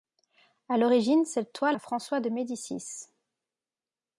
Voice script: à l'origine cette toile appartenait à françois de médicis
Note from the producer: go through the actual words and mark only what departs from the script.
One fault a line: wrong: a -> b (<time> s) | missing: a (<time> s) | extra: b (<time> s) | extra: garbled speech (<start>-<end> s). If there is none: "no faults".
missing: appartenait (1.8 s)